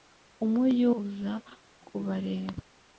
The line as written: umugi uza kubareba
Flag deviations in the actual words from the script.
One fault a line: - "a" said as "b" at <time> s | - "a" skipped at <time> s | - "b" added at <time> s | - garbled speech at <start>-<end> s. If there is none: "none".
none